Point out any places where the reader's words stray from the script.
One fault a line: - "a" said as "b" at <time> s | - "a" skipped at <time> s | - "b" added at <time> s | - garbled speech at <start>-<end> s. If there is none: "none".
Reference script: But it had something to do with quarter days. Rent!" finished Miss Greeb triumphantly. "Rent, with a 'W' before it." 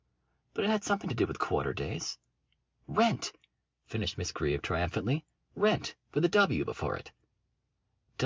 none